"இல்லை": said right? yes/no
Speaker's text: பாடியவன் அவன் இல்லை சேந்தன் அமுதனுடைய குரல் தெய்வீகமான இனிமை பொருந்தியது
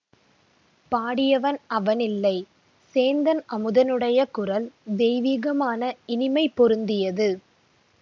yes